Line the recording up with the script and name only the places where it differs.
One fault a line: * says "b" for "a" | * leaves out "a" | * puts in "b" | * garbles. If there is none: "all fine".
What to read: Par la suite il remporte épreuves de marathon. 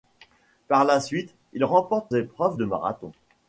all fine